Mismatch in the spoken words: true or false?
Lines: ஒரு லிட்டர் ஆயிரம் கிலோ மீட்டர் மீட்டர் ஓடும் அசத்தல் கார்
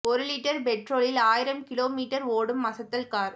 true